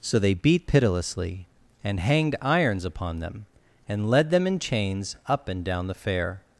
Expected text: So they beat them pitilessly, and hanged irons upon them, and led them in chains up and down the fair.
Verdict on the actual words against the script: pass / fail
fail